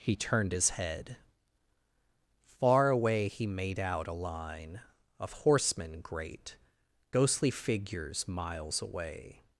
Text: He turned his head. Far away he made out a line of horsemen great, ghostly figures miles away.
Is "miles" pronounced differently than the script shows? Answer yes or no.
no